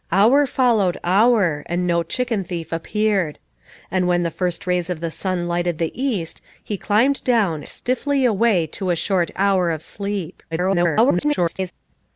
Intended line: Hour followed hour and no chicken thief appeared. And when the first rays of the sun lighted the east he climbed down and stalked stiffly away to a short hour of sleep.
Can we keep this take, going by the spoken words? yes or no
no